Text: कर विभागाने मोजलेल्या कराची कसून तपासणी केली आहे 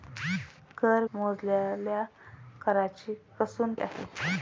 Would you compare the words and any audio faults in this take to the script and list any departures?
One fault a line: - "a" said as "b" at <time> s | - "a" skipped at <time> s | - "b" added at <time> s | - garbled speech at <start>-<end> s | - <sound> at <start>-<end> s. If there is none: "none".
- "विभागाने" skipped at 1.0 s
- "तपासणी केली" skipped at 3.7 s